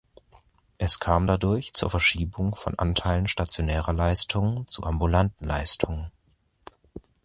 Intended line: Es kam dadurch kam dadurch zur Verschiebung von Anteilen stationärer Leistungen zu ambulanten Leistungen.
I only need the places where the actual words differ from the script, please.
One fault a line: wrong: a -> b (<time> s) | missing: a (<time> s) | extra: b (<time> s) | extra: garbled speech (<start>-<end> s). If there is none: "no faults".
missing: kam dadurch (1.7 s)